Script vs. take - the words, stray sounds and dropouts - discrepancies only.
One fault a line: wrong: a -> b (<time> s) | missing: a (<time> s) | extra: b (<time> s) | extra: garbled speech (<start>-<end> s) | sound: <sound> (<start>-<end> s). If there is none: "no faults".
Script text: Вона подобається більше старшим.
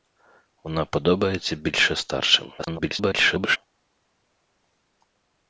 extra: garbled speech (2.6-3.6 s)